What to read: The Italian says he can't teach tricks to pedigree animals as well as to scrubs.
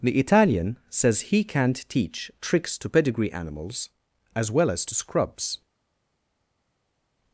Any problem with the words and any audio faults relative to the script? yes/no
no